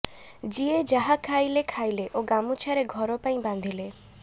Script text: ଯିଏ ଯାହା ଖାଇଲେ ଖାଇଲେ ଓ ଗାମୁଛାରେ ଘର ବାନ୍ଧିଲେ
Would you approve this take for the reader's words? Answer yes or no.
no